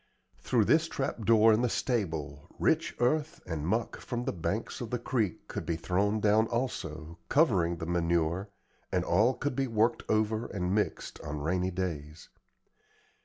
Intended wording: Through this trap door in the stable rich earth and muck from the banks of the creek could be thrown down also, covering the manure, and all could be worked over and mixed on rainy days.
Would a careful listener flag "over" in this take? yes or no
no